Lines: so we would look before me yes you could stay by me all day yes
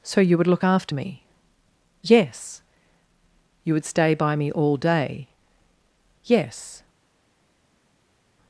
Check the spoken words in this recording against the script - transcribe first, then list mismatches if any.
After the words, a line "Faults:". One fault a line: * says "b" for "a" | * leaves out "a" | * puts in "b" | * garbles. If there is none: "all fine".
so you would look after me yes you would stay by me all day yes
Faults:
* says "you" for "we"
* says "after" for "before"
* says "would" for "could"